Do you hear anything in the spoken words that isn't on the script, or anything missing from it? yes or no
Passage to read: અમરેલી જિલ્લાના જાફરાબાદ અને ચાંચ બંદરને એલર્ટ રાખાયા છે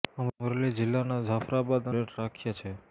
yes